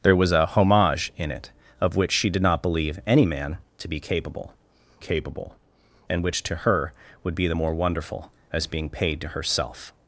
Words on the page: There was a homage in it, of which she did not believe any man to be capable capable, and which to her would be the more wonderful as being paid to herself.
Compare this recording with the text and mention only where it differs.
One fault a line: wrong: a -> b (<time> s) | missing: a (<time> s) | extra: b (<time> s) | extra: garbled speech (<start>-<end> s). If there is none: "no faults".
no faults